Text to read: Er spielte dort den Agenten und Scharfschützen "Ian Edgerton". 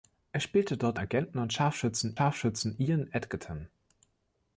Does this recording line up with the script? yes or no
no